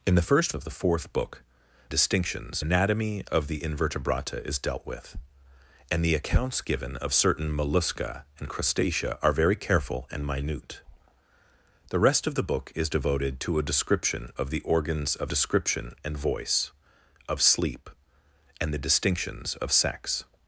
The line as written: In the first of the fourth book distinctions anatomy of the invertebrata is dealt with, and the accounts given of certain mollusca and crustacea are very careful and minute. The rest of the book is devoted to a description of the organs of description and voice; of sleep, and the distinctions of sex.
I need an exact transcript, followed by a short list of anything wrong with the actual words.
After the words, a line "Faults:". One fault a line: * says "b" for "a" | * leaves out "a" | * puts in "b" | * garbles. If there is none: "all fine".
In the first of the fourth book distinctions anatomy of the invertebrata is dealt with, and the accounts given of certain mollusca and crustacea are very careful and minute. The rest of the book is devoted to a description of the organs of description and voice; of sleep, and the distinctions of sex.
Faults:
all fine